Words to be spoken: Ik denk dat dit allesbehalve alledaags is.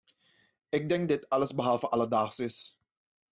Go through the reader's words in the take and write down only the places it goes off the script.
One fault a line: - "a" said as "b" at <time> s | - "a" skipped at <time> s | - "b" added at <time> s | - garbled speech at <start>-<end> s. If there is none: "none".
- "dat" skipped at 1.1 s